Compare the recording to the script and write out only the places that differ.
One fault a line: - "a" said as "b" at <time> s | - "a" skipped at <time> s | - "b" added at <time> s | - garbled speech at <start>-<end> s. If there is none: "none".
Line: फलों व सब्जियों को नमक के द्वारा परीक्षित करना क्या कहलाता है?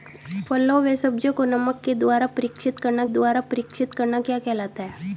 - "द्वारा परीक्षित करना" added at 3.1 s